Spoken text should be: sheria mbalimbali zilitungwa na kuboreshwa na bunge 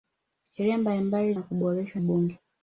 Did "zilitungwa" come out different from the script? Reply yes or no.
yes